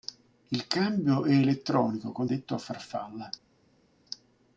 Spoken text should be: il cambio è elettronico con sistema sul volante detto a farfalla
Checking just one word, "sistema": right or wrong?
wrong